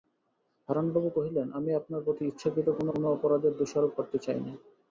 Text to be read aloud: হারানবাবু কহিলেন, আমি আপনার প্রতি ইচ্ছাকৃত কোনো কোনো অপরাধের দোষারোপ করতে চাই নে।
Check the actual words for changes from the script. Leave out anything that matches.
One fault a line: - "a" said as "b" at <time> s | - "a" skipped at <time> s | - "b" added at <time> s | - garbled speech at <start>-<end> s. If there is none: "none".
none